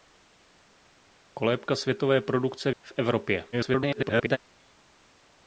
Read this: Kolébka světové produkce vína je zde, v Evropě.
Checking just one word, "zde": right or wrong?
wrong